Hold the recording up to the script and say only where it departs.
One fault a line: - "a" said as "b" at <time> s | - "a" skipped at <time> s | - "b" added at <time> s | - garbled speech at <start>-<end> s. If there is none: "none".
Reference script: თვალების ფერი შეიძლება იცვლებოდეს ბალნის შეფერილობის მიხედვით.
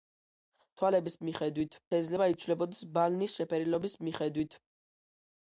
- "ფერი" said as "მიხედვით" at 1.3 s